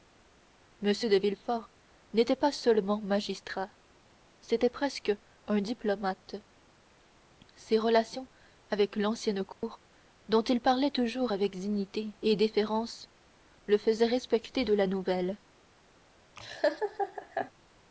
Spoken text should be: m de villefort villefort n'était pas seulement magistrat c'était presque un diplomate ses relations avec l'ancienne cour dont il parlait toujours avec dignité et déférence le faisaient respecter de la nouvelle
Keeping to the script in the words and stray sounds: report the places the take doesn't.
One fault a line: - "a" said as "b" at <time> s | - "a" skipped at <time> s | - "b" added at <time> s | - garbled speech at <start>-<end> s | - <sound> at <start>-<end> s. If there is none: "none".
- "villefort" skipped at 1.7 s
- dropout at 9.5-9.6 s
- laugh at 16.4-17.5 s